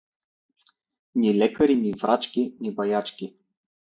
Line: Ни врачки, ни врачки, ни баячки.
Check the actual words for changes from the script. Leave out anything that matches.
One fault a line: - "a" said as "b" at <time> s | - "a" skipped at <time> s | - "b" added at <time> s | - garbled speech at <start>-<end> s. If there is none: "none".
- "врачки" said as "лекари" at 1.3 s